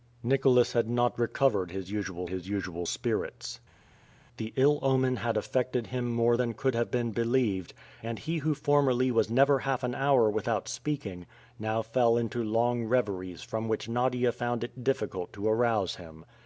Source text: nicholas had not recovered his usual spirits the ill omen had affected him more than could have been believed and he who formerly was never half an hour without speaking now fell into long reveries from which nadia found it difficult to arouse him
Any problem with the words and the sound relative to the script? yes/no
yes